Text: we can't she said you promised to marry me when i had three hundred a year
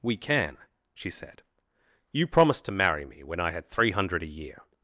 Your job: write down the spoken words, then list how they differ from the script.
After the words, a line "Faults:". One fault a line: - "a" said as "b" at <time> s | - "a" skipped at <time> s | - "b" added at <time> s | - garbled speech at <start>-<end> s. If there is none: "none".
we can she said you promised to marry me when i had three hundred a year
Faults:
- "can't" said as "can" at 0.2 s